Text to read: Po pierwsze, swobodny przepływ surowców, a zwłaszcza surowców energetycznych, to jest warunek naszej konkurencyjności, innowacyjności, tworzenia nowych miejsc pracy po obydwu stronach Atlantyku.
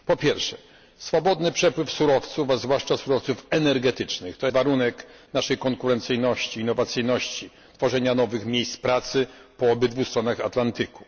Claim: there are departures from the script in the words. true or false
true